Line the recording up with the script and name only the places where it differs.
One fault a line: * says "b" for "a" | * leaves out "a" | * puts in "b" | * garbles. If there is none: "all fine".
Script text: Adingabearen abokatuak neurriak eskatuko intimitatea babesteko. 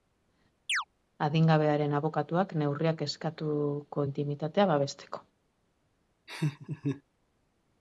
all fine